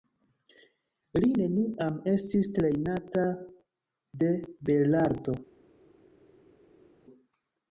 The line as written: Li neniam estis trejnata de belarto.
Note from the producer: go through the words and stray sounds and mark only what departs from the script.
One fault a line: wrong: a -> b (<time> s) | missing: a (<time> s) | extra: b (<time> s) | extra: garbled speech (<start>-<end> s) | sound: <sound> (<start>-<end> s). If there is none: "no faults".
no faults